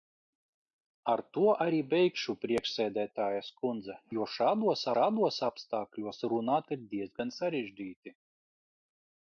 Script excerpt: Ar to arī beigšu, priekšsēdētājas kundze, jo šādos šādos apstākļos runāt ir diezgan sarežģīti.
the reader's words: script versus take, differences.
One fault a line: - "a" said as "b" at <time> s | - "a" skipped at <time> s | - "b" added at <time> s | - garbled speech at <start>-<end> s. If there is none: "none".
none